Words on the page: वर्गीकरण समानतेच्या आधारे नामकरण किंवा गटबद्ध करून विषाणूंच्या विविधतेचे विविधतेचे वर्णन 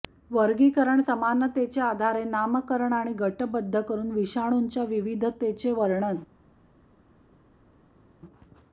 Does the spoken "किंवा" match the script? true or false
false